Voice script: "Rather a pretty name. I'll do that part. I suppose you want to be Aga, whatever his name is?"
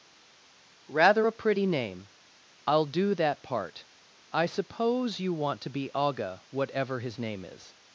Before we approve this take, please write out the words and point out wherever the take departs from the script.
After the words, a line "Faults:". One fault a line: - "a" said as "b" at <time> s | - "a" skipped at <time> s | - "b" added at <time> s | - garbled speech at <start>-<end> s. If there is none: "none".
"Rather a pretty name. I'll do that part. I suppose you want to be Aga, whatever his name is?"
Faults:
none